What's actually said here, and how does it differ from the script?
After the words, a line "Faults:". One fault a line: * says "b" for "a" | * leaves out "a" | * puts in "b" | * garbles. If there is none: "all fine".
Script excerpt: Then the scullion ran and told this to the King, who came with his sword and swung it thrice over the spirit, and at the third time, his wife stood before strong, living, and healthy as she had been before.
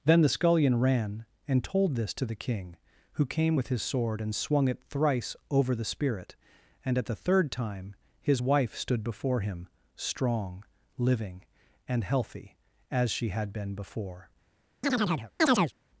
Then the scullion ran and told this to the King, who came with his sword and swung it thrice over the spirit, and at the third time, his wife stood before him strong, living, and healthy as she had been before.
Faults:
* puts in "him"